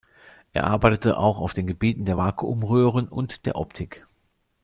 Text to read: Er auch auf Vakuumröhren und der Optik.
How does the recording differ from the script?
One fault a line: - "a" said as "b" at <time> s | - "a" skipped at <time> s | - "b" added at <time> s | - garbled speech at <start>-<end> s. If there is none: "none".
- "arbeitete" added at 0.6 s
- "den Gebieten der" added at 1.5 s